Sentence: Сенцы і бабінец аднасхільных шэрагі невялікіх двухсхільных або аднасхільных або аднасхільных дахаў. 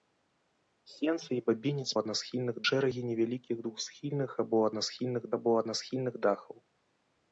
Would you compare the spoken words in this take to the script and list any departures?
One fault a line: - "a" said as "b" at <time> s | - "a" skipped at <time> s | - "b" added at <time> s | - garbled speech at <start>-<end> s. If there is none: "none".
none